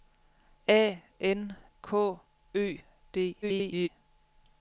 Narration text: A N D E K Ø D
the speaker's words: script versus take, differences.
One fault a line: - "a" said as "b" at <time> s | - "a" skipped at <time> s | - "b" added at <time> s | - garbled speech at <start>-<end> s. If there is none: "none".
- "D E" skipped at 1.6 s
- garbled speech at 3.4-3.9 s